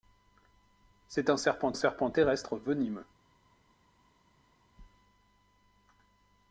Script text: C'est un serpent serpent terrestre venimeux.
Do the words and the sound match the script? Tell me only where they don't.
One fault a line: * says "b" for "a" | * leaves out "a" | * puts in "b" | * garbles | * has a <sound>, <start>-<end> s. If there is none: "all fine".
all fine